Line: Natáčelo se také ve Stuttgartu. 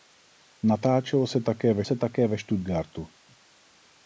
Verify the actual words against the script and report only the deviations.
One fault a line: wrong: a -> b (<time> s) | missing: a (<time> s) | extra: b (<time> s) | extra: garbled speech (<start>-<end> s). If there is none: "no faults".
extra: se také ve (1.8 s)